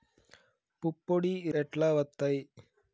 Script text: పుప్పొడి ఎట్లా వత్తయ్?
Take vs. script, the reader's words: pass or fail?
pass